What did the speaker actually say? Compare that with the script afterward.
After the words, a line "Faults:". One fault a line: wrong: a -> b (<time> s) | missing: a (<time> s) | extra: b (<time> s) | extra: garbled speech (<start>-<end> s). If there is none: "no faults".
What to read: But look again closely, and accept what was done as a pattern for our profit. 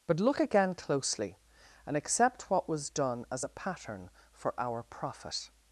But look again closely, and accept what was done as a pattern for our profit.
Faults:
no faults